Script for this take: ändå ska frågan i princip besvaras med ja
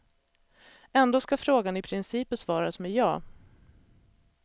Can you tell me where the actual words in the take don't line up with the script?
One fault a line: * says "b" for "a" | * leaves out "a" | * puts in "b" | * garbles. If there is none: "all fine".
all fine